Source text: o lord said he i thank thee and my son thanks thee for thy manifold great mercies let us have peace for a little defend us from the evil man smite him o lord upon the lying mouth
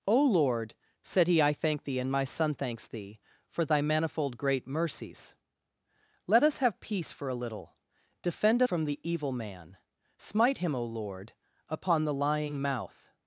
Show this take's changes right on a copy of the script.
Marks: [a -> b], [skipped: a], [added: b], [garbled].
o lord said he i thank thee and my son thanks thee for thy manifold great mercies let us have peace for a little defend [skipped: us] from the evil man smite him o lord upon the lying mouth